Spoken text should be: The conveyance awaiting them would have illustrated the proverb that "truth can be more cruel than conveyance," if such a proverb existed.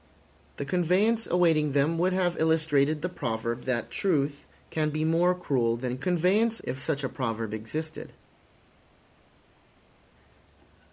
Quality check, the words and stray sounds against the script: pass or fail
pass